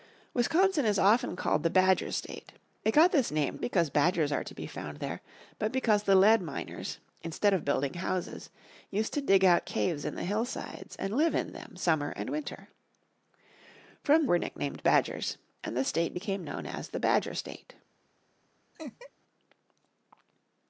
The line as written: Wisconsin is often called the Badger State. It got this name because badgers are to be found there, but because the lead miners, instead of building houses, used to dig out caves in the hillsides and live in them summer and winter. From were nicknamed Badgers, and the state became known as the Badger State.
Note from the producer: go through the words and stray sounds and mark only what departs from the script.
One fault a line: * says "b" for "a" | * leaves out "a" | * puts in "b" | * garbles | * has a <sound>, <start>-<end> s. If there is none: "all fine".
* has a laugh, 18.7-19.1 s